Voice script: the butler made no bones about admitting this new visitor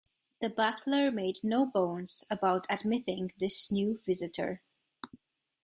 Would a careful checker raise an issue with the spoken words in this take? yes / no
no